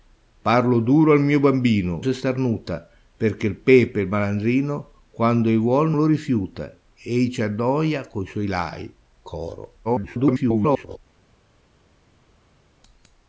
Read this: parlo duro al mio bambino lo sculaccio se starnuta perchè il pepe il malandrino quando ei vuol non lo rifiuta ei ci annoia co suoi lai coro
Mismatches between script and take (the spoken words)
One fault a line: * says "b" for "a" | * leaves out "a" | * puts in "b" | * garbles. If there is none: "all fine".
* leaves out "lo sculaccio"
* leaves out "non"
* garbles